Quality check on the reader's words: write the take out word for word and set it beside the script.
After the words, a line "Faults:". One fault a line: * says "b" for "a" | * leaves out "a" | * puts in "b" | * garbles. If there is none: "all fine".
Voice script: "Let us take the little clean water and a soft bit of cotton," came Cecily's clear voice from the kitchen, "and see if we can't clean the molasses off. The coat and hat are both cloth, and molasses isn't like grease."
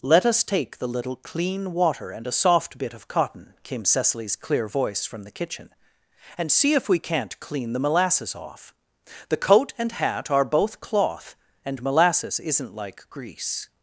"Let us take the little clean water and a soft bit of cotton," came Cecily's clear voice from the kitchen, "and see if we can't clean the molasses off. The coat and hat are both cloth, and molasses isn't like grease."
Faults:
all fine